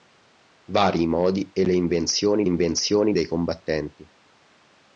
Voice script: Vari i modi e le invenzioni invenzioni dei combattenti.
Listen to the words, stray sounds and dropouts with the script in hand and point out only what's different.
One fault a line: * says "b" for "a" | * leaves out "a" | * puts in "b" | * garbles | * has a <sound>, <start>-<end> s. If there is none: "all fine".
all fine